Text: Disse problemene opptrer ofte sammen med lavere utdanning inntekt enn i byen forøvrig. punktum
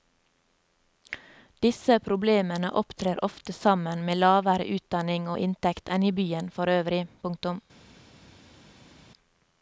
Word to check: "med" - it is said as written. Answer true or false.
true